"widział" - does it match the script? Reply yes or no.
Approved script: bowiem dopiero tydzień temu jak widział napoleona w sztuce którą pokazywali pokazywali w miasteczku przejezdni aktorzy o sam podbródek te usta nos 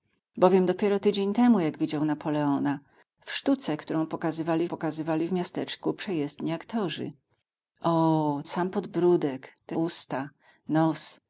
yes